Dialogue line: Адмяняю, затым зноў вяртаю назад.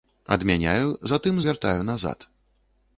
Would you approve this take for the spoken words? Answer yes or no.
no